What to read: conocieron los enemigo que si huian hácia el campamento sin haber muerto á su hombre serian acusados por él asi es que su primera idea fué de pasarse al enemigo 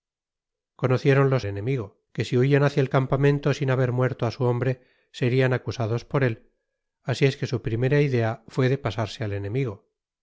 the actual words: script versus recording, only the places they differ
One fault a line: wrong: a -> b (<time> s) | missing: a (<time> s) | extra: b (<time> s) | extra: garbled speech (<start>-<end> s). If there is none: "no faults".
no faults